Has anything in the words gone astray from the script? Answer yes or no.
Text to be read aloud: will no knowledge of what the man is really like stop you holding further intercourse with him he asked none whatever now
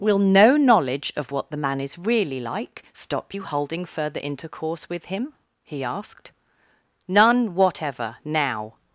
no